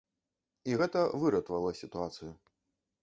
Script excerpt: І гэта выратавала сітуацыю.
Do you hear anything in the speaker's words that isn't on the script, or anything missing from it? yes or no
no